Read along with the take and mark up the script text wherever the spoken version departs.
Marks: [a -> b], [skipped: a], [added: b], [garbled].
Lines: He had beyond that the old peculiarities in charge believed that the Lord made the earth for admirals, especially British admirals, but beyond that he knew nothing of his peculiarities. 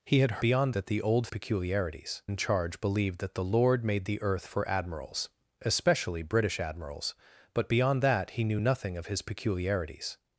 He had beyond that the old peculiarities in charge believed that the Lord made the earth for admirals, especially British admirals, but beyond that he knew nothing of his peculiarities.